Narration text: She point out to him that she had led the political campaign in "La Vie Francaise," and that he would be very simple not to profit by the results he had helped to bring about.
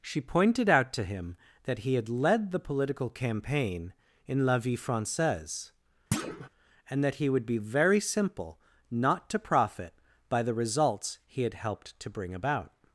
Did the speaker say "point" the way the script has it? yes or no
no